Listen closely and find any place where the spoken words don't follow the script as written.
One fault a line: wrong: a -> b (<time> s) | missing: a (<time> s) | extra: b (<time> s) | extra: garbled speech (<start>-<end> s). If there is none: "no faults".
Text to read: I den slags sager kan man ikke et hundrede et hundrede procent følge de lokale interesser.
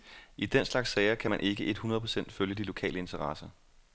missing: et hundrede (2.0 s)